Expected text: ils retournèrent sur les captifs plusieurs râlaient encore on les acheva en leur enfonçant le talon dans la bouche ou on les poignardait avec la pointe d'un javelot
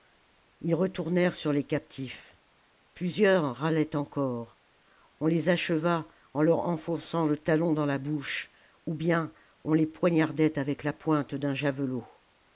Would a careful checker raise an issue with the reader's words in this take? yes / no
yes